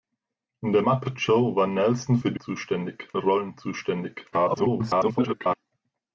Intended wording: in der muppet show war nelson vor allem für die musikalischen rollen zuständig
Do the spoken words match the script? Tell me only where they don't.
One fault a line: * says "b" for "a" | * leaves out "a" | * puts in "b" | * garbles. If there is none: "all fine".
* leaves out "vor allem"
* says "zuständig" for "musikalischen"
* garbles